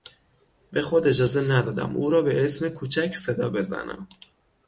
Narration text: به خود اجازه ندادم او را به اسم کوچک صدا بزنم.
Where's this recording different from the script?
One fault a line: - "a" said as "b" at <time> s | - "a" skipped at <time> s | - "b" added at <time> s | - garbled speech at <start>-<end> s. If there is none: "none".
none